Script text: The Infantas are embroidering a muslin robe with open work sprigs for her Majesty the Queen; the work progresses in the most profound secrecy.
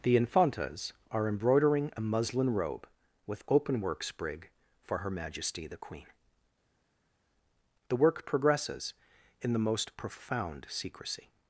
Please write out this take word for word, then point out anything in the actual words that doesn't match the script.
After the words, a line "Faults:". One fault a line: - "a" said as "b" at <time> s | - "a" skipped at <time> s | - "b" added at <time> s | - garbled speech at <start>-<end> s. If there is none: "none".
The Infantas are embroidering a muslin robe with open work sprig for her Majesty the Queen; the work progresses in the most profound secrecy.
Faults:
- "sprigs" said as "sprig" at 4.0 s